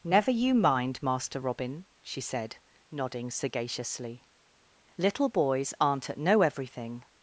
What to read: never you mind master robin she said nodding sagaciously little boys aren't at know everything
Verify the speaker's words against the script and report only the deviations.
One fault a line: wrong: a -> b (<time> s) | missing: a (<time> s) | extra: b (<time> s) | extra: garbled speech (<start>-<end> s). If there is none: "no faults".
no faults